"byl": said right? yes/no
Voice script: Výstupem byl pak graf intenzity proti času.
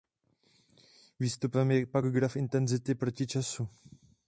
no